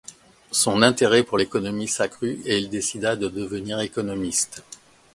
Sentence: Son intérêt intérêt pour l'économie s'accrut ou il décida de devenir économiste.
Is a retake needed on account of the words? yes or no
yes